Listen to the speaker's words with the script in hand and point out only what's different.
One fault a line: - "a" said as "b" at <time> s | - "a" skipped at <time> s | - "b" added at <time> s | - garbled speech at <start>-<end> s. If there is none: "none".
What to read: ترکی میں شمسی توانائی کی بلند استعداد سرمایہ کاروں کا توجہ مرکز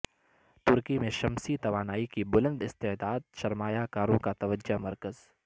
none